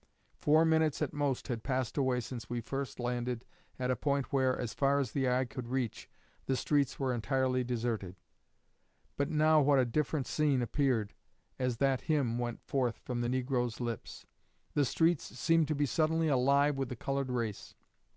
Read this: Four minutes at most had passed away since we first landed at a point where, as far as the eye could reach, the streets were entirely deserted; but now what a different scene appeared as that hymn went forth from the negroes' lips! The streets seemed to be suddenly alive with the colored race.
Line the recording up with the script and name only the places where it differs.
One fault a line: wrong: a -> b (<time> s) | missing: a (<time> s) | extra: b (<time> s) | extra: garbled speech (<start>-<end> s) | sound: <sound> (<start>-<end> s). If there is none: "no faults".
no faults